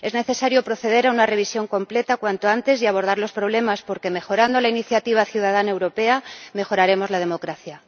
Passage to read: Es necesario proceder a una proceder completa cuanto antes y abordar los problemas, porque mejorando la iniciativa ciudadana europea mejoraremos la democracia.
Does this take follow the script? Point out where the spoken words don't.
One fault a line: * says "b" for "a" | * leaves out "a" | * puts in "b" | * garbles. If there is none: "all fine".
* says "revisión" for "proceder"